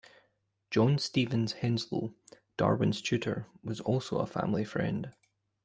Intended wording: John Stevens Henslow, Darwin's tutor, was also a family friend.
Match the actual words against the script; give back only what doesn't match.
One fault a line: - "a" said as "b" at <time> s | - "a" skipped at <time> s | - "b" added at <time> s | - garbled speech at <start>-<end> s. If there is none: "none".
none